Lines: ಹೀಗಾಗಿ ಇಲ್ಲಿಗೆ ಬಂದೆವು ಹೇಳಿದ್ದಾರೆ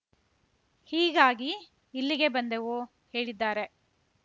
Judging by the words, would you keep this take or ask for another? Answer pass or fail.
pass